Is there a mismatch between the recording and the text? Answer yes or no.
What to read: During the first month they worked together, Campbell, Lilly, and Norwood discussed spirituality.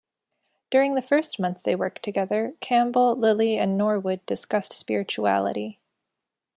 no